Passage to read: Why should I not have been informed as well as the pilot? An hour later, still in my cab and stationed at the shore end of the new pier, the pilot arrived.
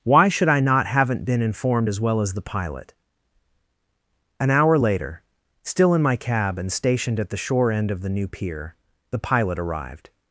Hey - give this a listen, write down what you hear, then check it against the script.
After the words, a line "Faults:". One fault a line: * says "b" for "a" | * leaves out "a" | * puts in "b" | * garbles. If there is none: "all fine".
Why should I not haven't been informed as well as the pilot? An hour later, still in my cab and stationed at the shore end of the new pier, the pilot arrived.
Faults:
* says "haven't" for "have"